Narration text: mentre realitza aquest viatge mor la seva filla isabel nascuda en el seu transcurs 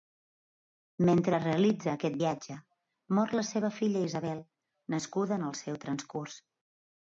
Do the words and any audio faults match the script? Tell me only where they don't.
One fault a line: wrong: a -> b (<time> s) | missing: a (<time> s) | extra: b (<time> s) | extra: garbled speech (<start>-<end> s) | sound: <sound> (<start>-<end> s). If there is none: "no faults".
no faults